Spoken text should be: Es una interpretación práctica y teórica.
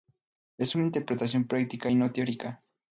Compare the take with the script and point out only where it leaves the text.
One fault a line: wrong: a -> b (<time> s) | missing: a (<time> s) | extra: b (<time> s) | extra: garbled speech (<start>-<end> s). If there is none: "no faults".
extra: no (2.0 s)